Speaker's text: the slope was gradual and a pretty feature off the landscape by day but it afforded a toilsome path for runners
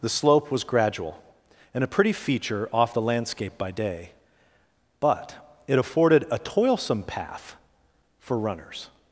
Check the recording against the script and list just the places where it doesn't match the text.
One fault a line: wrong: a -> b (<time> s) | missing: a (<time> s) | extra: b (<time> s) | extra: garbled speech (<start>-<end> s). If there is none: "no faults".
no faults